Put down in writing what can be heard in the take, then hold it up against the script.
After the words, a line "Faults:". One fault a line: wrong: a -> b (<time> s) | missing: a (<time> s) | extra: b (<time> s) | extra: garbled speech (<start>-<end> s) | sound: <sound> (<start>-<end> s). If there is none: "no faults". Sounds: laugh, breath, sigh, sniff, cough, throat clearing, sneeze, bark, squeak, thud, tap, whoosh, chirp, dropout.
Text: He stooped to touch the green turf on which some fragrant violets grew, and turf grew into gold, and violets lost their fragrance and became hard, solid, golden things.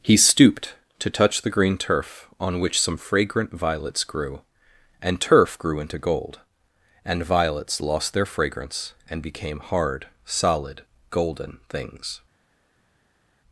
He stooped to touch the green turf on which some fragrant violets grew, and turf grew into gold, and violets lost their fragrance and became hard, solid, golden things.
Faults:
no faults